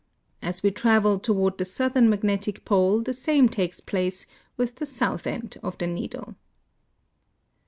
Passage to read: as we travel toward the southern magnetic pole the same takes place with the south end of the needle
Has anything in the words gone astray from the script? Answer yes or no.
no